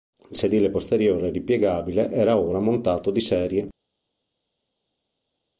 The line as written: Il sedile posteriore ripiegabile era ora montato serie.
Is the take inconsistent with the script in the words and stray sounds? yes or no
yes